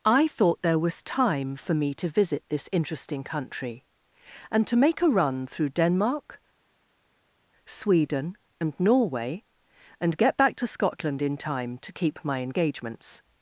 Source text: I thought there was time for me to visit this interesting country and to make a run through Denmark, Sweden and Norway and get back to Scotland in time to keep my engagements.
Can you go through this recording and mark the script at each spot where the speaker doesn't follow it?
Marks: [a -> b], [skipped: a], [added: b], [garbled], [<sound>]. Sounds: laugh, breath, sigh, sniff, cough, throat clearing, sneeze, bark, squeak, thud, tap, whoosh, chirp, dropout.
I thought there was time for me to visit this interesting country and to make a run through Denmark, Sweden and Norway and get back to Scotland in time to keep my engagements.